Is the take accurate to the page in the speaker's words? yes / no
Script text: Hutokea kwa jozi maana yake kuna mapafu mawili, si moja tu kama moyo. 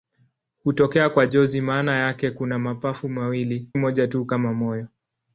no